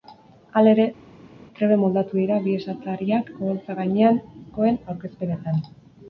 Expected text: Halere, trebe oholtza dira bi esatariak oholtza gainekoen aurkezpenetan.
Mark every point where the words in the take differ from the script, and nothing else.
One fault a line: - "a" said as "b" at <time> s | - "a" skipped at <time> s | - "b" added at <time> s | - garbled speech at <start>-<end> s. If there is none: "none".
- "oholtza" said as "moldatu" at 1.8 s